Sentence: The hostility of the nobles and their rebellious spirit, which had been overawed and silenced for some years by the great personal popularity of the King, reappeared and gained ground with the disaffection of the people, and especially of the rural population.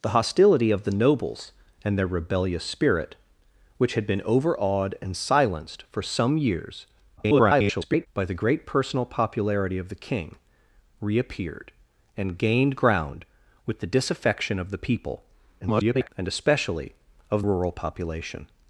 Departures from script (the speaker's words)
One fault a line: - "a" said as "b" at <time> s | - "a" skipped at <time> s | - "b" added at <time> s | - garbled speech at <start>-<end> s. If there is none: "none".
- garbled speech at 7.2-8.1 s
- garbled speech at 15.6-16.1 s
- "the" skipped at 17.4 s